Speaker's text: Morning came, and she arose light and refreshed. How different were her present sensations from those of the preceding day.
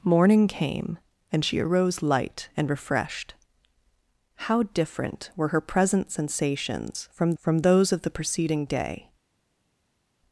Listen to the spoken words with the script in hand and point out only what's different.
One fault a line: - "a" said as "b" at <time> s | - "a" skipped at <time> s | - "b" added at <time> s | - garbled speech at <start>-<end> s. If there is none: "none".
- "from" added at 7.4 s